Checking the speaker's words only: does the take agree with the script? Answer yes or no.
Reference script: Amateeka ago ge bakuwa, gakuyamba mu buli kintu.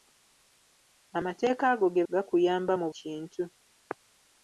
no